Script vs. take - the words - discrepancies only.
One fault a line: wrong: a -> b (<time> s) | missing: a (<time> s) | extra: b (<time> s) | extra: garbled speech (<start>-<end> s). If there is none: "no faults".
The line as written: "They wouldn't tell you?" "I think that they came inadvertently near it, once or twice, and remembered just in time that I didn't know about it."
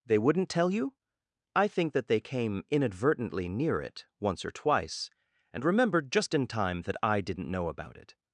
no faults